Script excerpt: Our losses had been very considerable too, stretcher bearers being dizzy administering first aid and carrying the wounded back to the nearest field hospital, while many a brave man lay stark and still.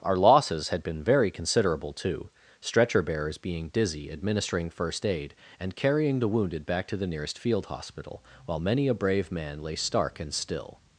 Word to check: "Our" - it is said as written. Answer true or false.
true